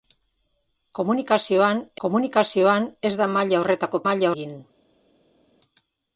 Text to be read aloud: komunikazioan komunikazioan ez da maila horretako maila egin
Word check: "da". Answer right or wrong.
right